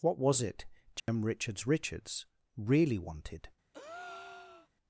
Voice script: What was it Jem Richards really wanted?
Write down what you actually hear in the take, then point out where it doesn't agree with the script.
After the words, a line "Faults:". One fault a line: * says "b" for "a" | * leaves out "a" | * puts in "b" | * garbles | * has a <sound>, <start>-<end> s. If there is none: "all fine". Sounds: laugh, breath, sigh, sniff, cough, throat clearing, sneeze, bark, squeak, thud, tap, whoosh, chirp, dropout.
What was it Jem Richards Richards really wanted?
Faults:
* has a dropout, 1.0-1.1 s
* puts in "Richards"
* has a breath, 3.7-4.7 s